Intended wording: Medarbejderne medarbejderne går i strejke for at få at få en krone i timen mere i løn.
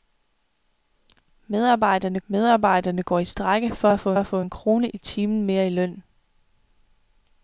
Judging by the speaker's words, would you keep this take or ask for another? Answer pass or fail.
pass